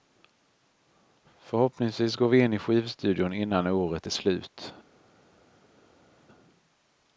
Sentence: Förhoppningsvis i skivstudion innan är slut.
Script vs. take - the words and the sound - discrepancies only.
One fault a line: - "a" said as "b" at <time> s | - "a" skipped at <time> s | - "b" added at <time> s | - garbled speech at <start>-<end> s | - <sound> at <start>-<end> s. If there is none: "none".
- "går vi in" added at 2.1 s
- "året" added at 3.7 s